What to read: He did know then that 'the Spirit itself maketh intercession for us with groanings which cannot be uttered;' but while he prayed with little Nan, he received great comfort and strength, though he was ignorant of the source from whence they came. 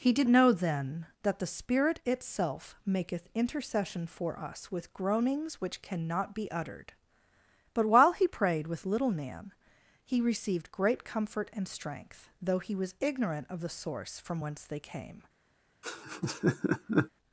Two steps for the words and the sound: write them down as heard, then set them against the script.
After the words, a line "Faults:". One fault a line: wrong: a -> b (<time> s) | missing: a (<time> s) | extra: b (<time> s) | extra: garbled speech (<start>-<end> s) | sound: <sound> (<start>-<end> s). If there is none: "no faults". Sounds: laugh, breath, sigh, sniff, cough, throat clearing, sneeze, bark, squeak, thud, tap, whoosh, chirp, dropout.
He did know then that 'the Spirit itself maketh intercession for us with groanings which cannot be uttered;' but while he prayed with little Nan, he received great comfort and strength, though he was ignorant of the source from whence they came.
Faults:
sound: laugh (15.8-17.1 s)